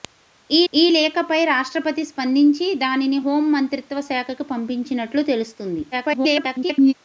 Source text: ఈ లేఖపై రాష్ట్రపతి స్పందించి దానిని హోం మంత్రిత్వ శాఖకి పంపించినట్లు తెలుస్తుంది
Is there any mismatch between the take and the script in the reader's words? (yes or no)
yes